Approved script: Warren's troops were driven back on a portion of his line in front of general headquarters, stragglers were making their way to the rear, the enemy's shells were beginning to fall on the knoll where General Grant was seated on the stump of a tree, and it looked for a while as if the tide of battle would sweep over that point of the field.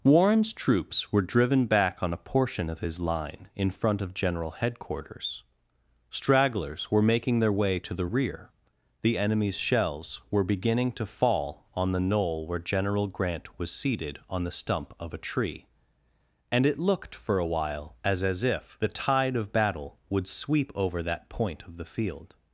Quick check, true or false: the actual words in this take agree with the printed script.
false